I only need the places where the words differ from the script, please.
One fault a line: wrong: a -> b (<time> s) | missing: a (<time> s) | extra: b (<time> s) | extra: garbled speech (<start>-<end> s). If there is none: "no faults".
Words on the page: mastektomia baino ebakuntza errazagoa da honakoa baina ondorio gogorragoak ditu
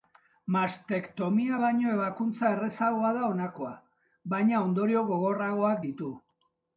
no faults